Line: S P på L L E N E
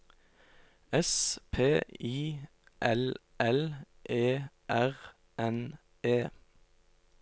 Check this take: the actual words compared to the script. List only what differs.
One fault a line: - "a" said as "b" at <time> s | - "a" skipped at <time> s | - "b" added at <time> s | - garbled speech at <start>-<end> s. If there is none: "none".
- "på" said as "I" at 2.0 s
- "R" added at 4.7 s